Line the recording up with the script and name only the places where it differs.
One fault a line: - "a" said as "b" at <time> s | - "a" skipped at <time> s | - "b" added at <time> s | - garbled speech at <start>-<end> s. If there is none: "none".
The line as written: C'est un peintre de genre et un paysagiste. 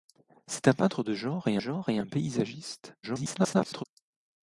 - "genre et" added at 1.6 s
- garbled speech at 3.0-3.8 s